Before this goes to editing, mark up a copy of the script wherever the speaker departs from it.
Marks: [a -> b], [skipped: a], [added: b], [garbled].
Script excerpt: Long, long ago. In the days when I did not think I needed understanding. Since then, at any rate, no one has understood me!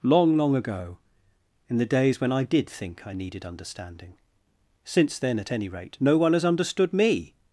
Long, long ago. In the days when I did [skipped: not] think I needed understanding. Since then, at any rate, no one has understood me!